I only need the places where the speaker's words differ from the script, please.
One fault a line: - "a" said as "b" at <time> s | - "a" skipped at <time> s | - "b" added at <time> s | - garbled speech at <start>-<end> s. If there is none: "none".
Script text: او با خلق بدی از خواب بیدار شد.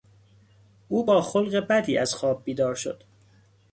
none